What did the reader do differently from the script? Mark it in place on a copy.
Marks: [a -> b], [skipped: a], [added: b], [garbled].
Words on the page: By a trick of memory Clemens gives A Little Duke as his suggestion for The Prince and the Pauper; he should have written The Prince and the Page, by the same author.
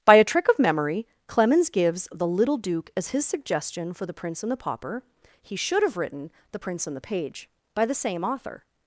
By a trick of memory Clemens gives [A -> The] Little Duke as his suggestion for The Prince and the Pauper; he should have written The Prince and the Page, by the same author.